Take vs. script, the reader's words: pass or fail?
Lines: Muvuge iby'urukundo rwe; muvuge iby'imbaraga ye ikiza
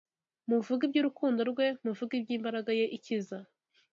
pass